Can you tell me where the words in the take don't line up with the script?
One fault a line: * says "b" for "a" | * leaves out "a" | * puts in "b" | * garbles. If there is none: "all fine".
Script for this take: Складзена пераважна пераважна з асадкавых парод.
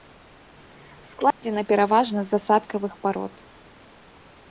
* leaves out "пераважна"